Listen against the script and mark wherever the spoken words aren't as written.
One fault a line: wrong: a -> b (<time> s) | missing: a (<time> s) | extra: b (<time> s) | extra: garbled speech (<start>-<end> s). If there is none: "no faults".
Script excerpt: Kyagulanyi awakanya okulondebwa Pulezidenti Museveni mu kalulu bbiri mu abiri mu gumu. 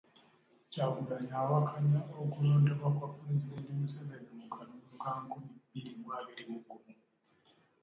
extra: kwa (3.0 s)
extra: ka nkumi (5.0 s)